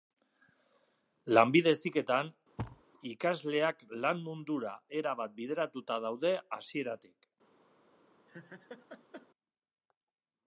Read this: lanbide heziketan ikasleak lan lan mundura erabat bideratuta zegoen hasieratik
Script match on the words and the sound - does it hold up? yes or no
no